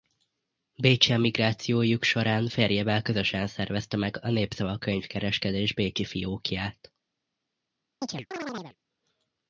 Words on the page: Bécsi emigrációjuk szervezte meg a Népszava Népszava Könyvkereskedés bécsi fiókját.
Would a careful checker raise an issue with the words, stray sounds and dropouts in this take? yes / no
yes